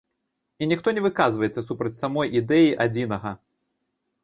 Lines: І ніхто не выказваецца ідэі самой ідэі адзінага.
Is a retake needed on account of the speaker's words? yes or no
yes